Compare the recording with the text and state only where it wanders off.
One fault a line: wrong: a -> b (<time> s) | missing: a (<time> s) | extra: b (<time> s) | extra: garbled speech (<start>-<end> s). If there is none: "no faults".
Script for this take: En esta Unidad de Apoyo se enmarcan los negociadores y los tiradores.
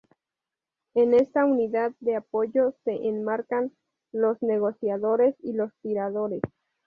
no faults